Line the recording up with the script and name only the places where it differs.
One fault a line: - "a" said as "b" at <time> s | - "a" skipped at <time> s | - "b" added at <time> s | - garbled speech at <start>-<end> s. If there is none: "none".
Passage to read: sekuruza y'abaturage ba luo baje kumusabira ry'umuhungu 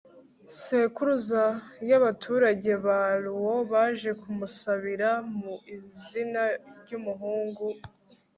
- "mu izina" added at 5.4 s